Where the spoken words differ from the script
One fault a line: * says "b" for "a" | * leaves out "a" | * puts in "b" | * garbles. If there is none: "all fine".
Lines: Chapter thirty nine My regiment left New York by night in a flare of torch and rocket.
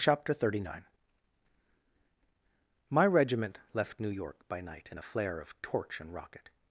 all fine